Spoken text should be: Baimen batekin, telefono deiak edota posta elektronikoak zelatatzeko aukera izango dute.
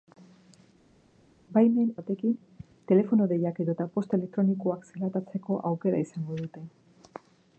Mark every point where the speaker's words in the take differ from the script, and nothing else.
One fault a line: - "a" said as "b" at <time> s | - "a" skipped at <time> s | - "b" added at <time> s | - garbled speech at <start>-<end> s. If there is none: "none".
none